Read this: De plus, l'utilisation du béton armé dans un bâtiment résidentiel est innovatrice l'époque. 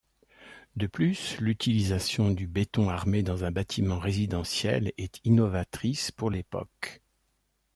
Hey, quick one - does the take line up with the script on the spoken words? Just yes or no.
no